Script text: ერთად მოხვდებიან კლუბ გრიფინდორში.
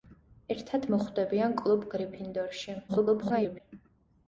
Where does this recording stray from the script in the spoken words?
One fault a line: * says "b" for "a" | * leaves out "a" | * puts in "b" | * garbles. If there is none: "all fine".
* garbles